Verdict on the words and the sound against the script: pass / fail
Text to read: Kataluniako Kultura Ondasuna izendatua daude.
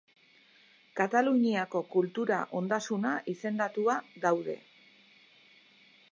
pass